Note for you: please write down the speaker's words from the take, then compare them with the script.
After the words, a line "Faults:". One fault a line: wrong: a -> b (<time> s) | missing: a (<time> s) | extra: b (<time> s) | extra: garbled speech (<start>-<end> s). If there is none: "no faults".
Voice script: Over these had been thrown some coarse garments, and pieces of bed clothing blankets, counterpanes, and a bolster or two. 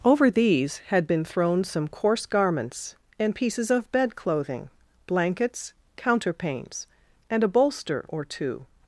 Over these had been thrown some coarse garments, and pieces of bed clothing blankets, counterpanes, and a bolster or two.
Faults:
no faults